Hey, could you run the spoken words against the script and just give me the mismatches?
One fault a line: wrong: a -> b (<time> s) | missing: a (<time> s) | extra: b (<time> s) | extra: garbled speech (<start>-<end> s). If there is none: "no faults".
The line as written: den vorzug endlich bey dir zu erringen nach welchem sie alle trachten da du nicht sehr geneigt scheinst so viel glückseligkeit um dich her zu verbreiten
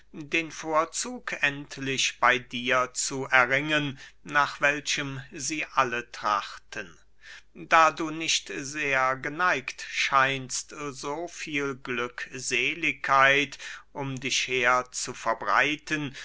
no faults